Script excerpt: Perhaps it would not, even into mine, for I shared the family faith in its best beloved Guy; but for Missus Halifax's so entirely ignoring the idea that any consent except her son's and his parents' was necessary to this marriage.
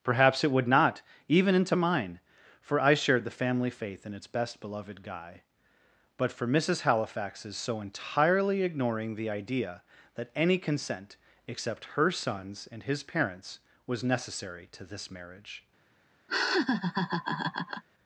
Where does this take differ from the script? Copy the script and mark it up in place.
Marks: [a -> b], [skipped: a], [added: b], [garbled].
Perhaps it would not, even into mine, for I shared the family faith in its best beloved Guy; but for Missus Halifax's so entirely ignoring the idea that any consent except her son's and his parents' was necessary to this marriage.